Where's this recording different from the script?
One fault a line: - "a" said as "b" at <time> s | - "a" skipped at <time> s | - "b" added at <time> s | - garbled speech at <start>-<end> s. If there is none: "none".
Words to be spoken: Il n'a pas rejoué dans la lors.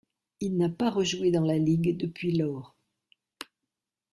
- "ligue depuis" added at 1.6 s